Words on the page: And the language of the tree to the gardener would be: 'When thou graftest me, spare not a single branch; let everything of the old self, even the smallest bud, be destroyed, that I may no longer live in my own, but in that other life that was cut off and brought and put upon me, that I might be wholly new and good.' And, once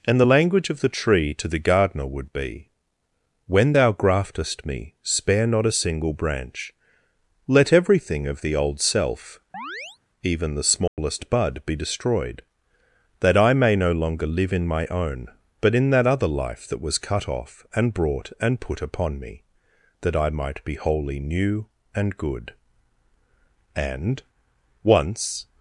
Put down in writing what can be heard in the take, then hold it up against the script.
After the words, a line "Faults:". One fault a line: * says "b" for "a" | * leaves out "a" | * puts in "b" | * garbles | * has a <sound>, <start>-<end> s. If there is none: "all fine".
And the language of the tree to the gardener would be: 'When thou graftest me, spare not a single branch; let everything of the old self, even the smallest bud, be destroyed, that I may no longer live in my own, but in that other life that was cut off and brought and put upon me, that I might be wholly new and good.' And, once
Faults:
* has a chirp, 9.5-10.0 s
* has a dropout, 10.9-11.0 s